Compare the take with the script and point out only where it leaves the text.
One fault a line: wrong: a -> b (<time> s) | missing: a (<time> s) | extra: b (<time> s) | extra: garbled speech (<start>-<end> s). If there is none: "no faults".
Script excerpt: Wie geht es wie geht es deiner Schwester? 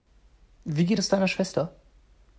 missing: wie geht es (1.1 s)